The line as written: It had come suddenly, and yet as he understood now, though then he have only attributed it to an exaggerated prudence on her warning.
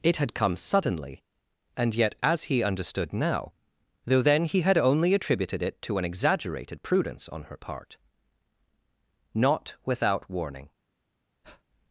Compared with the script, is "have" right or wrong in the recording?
wrong